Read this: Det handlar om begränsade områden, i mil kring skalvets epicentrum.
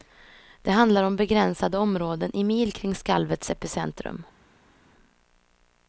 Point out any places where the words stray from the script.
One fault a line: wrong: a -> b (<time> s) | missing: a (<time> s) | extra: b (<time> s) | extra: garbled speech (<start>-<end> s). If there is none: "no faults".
no faults